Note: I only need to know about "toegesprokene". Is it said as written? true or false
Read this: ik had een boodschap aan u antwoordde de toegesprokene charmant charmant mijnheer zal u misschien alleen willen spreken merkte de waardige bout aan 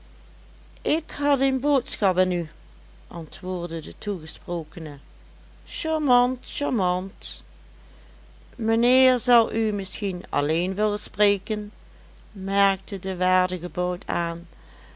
true